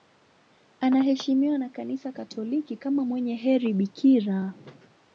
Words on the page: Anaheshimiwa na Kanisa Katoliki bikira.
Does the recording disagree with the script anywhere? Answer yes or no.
yes